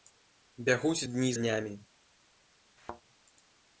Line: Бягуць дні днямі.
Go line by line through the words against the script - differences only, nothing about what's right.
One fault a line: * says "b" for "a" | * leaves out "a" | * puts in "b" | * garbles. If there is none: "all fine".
all fine